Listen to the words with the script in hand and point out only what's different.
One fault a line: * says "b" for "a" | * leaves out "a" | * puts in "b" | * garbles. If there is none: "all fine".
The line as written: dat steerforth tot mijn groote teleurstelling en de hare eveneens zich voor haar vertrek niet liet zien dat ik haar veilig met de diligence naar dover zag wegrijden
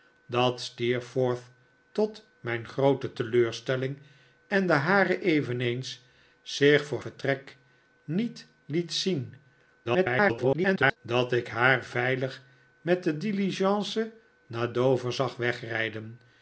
* leaves out "haar"
* garbles